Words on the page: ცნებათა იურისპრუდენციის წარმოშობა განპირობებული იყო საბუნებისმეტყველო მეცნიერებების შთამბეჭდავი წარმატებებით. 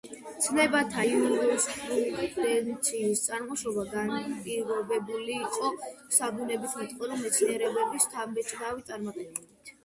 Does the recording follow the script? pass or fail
pass